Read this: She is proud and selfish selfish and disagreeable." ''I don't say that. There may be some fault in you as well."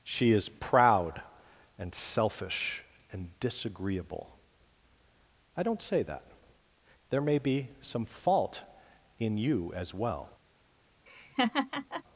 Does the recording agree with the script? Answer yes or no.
no